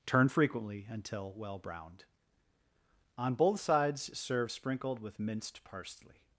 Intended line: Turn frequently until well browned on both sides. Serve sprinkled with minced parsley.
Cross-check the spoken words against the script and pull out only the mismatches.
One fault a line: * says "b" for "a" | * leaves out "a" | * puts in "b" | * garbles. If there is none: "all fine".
all fine